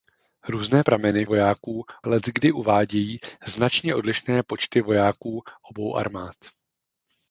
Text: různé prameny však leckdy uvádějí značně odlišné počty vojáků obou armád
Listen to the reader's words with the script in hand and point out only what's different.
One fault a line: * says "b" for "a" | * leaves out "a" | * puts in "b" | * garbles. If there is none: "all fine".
* says "vojáků" for "však"